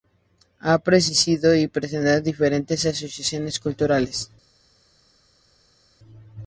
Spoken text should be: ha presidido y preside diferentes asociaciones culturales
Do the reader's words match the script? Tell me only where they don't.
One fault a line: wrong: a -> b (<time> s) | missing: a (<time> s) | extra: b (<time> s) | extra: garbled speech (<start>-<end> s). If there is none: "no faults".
no faults